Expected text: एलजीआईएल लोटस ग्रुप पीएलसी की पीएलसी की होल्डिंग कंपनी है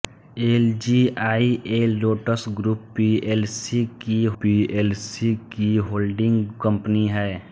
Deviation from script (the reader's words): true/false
false